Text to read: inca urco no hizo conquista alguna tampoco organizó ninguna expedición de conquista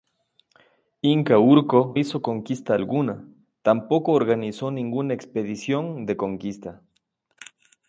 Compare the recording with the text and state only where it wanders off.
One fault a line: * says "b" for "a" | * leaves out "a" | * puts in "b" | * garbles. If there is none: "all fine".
* leaves out "no"